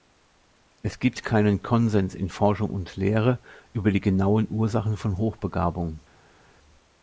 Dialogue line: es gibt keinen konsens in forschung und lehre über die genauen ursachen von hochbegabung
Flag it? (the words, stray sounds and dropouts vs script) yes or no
no